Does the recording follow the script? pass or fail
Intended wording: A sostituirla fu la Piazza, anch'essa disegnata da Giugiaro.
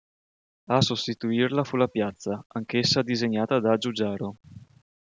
pass